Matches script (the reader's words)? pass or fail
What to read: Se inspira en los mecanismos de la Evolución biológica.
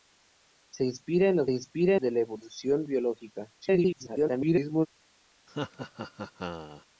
fail